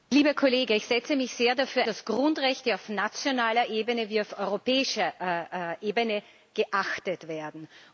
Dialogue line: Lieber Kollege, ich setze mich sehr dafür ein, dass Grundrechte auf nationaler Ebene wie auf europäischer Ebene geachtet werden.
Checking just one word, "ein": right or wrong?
wrong